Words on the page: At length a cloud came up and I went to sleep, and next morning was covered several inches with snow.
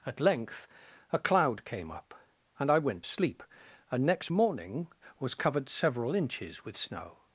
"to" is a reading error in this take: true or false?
true